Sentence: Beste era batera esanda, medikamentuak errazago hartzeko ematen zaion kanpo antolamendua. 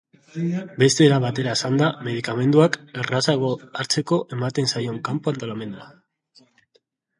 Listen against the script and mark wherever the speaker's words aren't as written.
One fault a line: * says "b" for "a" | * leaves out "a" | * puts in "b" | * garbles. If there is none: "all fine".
all fine